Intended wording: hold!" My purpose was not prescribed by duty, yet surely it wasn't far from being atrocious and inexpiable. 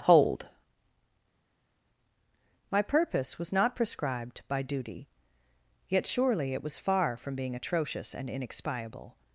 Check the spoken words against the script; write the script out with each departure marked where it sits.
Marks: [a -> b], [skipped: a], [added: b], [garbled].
hold!" My purpose was not prescribed by duty, yet surely it [wasn't -> was] far from being atrocious and inexpiable.